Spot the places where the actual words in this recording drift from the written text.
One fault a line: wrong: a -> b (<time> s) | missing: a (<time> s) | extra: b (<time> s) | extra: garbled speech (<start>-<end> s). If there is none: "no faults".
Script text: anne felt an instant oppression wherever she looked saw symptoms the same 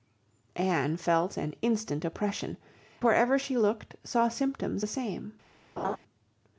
no faults